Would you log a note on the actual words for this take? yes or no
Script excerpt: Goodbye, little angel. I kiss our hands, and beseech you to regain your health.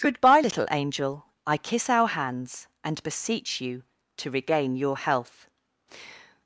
no